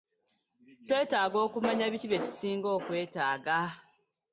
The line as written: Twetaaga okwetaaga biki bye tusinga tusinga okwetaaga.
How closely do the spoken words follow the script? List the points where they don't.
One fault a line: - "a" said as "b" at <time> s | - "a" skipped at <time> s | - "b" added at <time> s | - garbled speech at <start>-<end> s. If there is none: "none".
- "okwetaaga" said as "okumanya" at 1.4 s
- "tusinga" skipped at 2.7 s